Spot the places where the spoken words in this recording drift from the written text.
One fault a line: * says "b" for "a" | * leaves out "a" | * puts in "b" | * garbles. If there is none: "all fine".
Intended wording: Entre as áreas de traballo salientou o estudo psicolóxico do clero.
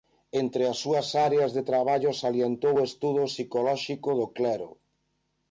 * puts in "súas"